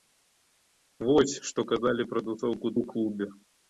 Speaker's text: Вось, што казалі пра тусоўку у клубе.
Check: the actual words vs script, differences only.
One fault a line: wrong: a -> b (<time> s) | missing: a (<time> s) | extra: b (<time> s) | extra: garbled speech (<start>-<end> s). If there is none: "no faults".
no faults